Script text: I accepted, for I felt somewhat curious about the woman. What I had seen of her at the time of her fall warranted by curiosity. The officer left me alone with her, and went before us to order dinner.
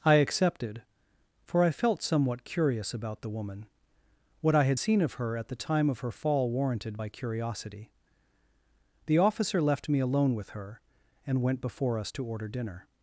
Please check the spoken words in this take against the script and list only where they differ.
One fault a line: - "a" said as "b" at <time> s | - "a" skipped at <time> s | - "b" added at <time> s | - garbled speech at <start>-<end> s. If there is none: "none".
none